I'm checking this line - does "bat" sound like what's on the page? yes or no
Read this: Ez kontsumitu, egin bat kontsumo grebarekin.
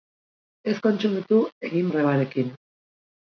no